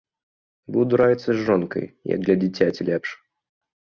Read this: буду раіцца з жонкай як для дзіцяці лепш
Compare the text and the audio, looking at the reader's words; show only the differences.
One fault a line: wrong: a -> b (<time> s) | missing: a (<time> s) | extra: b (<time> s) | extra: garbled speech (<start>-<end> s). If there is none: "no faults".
no faults